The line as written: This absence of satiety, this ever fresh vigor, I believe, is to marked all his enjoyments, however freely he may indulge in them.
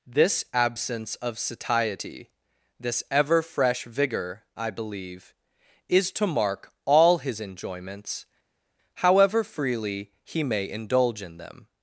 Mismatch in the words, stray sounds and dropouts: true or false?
true